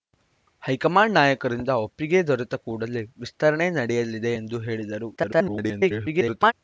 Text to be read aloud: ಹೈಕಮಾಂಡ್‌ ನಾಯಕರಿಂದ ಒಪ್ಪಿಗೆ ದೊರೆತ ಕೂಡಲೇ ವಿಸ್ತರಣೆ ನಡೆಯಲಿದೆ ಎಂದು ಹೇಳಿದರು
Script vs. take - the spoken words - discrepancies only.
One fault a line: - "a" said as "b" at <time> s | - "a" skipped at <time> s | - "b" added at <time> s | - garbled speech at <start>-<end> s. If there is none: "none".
- garbled speech at 5.2-6.5 s